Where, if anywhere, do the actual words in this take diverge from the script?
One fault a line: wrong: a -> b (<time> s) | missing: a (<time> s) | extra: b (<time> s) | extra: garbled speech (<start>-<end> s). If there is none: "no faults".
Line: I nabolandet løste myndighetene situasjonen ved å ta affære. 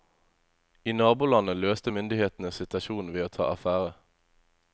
no faults